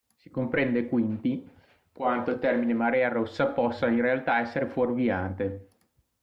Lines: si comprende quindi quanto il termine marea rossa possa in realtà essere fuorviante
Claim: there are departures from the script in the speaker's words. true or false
false